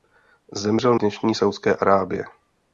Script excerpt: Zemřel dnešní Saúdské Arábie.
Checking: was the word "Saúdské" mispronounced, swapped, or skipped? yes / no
no